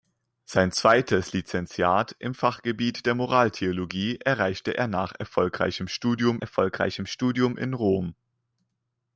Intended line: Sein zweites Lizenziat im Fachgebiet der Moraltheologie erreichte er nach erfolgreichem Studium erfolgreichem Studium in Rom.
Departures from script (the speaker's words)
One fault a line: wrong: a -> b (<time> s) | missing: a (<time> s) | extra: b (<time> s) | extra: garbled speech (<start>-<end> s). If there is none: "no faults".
no faults